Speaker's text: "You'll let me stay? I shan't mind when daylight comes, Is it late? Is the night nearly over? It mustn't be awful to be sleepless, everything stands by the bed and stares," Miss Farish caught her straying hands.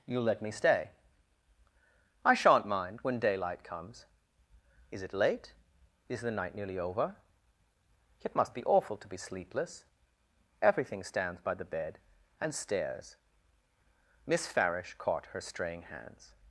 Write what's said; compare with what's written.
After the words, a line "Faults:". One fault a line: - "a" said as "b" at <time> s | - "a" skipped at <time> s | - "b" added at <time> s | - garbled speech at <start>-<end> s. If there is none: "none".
"You'll let me stay? I shan't mind when daylight comes, Is it late? Is the night nearly over? It must be awful to be sleepless, everything stands by the bed and stares," Miss Farish caught her straying hands.
Faults:
- "mustn't" said as "must" at 8.3 s